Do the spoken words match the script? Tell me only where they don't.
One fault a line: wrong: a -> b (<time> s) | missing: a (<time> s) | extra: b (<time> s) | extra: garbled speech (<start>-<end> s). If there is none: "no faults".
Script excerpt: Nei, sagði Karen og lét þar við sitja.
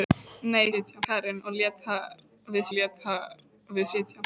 wrong: sagði -> sitja (0.7 s)
extra: lét þar við (2.8 s)